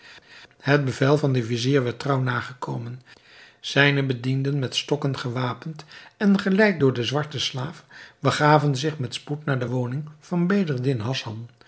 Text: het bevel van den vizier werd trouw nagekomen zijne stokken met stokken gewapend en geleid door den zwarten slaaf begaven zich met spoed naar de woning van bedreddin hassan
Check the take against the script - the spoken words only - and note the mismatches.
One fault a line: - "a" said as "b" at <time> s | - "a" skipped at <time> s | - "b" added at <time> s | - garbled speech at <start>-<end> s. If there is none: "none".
- "stokken" said as "bedienden" at 4.0 s